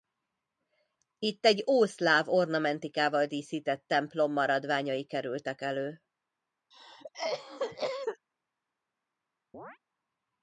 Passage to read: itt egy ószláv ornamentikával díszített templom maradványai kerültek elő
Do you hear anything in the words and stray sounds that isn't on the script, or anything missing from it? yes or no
yes